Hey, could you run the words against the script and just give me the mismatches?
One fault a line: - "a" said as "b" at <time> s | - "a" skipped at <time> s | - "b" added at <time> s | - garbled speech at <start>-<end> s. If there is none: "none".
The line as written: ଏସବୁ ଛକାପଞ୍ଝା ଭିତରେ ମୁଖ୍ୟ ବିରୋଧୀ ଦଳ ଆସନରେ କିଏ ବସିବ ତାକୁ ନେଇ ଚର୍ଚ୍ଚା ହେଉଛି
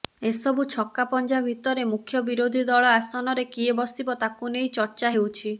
none